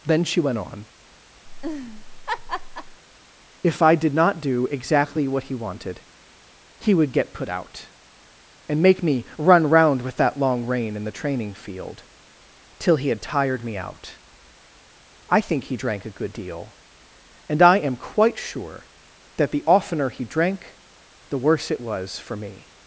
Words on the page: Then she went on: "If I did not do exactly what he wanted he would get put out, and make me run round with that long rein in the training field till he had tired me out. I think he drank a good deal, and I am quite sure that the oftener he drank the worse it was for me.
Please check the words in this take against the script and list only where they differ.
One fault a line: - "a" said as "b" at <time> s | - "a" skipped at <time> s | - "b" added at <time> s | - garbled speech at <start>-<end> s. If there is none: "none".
none